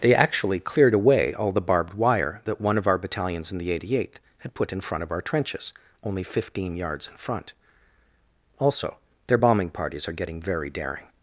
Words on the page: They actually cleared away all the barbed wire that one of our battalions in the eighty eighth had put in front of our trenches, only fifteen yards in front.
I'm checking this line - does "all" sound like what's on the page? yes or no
yes